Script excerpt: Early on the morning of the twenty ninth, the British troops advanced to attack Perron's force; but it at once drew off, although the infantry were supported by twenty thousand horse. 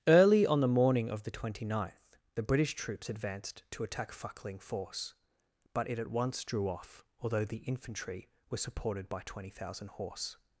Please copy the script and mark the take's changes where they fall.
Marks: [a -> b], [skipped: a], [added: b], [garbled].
Early on the morning of the twenty ninth, the British troops advanced to attack [Perron's -> Fuckling] force; but it at once drew off, although the infantry were supported by twenty thousand horse.